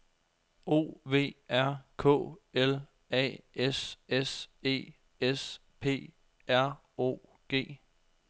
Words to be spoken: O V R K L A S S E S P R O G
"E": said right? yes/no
yes